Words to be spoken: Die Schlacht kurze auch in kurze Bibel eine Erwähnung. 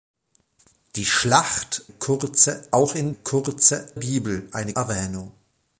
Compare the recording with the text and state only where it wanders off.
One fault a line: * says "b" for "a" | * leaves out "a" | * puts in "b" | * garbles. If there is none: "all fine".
all fine